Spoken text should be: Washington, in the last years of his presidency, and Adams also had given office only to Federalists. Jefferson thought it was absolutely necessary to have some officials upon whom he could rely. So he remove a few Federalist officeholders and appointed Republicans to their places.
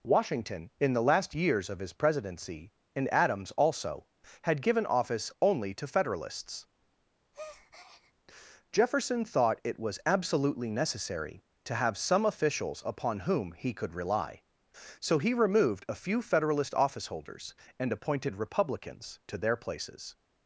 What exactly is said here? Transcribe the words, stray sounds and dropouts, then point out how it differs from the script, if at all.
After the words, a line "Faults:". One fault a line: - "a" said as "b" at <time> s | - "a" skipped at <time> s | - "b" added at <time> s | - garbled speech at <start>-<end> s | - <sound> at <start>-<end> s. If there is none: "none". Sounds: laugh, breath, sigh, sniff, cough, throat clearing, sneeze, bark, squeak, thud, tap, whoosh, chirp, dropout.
Washington, in the last years of his presidency, and Adams also had given office only to Federalists. Jefferson thought it was absolutely necessary to have some officials upon whom he could rely. So he removed a few Federalist officeholders and appointed Republicans to their places.
Faults:
- breath at 7.3-8.1 s
- "remove" said as "removed" at 15.3 s